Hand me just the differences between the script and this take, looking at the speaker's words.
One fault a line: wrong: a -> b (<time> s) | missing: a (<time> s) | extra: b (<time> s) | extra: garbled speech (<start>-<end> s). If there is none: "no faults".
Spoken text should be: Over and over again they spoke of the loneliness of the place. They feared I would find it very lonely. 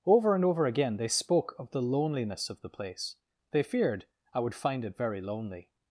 no faults